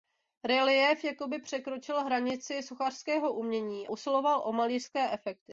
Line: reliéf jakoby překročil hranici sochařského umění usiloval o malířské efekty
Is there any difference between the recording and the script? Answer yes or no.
no